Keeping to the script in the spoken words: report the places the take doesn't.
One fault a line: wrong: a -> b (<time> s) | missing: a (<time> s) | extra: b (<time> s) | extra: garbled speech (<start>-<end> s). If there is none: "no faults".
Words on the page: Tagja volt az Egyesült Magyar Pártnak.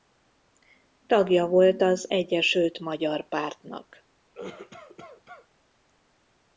no faults